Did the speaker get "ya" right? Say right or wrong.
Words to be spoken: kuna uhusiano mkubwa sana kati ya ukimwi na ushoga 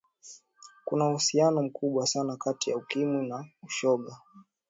right